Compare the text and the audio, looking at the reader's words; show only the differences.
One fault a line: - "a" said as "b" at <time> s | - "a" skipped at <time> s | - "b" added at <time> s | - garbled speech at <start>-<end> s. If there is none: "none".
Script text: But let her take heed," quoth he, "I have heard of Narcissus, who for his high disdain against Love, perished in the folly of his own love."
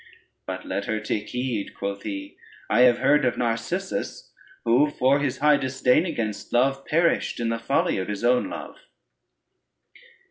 none